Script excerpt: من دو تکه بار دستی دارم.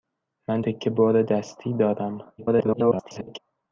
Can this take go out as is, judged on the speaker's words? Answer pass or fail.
fail